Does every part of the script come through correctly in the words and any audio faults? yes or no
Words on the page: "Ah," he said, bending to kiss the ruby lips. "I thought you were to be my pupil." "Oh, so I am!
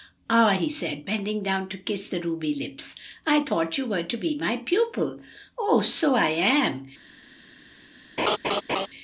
no